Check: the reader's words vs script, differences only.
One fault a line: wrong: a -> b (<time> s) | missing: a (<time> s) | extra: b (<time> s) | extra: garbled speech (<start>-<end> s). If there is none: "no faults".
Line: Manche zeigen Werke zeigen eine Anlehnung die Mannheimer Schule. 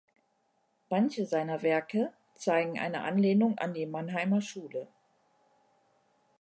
wrong: zeigen -> seiner (1.3 s)
extra: an (3.6 s)